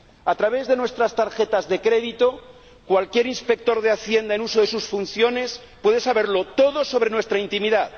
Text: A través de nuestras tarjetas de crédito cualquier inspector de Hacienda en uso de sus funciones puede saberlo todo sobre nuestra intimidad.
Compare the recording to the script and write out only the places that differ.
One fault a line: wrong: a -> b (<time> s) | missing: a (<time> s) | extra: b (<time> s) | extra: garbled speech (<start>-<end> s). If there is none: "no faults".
no faults